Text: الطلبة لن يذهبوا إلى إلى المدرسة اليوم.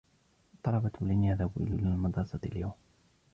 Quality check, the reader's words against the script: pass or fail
pass